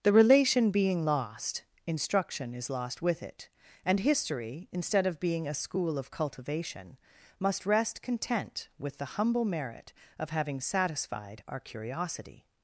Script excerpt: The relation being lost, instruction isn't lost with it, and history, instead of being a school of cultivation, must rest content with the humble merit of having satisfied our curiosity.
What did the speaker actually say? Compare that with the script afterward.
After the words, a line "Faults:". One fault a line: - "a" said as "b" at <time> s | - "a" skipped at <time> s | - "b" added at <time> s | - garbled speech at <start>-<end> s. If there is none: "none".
The relation being lost, instruction is lost with it, and history, instead of being a school of cultivation, must rest content with the humble merit of having satisfied our curiosity.
Faults:
- "isn't" said as "is" at 2.5 s